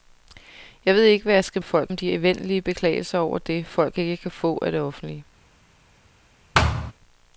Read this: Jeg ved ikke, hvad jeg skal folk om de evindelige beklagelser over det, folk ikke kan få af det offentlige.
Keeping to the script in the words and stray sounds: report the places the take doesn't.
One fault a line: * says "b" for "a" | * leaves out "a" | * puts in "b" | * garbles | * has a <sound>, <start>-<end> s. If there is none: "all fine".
* has a thud, 6.5-6.9 s